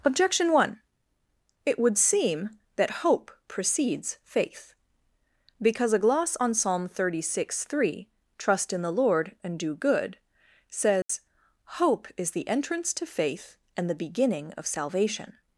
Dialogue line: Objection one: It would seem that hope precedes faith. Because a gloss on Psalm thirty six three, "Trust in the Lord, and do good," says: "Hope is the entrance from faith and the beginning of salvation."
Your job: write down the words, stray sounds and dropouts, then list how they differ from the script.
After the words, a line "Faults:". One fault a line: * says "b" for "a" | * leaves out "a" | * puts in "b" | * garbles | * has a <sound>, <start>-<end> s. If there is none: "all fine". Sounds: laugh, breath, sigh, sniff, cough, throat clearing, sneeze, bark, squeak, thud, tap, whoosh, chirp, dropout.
Objection one: It would seem that hope precedes faith. Because a gloss on Psalm thirty six three, "Trust in the Lord, and do good," says: "Hope is the entrance to faith and the beginning of salvation."
Faults:
* has a dropout, 11.0-11.1 s
* says "to" for "from"